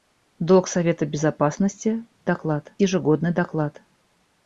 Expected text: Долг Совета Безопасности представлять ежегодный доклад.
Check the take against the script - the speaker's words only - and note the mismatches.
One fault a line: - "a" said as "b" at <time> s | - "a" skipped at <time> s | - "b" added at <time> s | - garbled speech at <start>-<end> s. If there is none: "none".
- "представлять" said as "доклад" at 2.2 s